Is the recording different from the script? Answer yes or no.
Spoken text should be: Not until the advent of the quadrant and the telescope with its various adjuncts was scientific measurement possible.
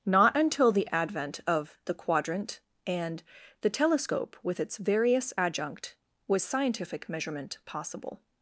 yes